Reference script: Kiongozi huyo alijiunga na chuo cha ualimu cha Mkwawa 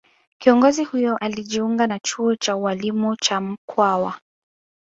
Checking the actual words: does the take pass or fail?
pass